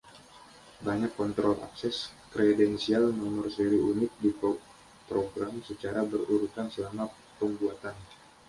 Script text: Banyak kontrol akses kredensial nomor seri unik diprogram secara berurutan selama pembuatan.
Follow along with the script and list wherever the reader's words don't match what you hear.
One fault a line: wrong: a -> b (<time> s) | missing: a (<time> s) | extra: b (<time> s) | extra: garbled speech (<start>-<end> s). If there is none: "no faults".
no faults